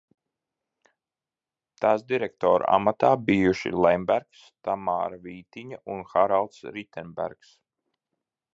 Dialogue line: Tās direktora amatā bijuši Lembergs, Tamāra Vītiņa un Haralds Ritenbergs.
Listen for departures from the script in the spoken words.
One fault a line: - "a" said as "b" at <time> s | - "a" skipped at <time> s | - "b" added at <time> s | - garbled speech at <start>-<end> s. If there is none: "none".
none